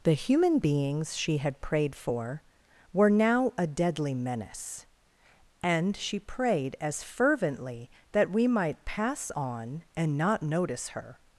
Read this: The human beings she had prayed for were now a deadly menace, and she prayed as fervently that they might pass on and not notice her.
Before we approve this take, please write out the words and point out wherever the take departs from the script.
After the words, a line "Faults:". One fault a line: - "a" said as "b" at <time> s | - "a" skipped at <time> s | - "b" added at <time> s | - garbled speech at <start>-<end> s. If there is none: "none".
The human beings she had prayed for were now a deadly menace, and she prayed as fervently that we might pass on and not notice her.
Faults:
- "they" said as "we" at 8.3 s